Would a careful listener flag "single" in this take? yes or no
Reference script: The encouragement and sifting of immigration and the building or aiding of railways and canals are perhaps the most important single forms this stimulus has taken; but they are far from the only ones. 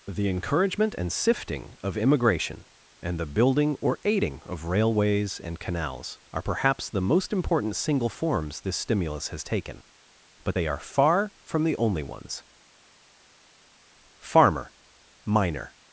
no